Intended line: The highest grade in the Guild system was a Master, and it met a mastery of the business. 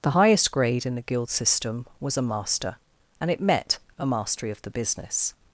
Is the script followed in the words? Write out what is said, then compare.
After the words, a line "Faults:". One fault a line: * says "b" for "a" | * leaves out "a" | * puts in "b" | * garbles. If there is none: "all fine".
The highest grade in the Guild system was a Master, and it met a mastery of the business.
Faults:
all fine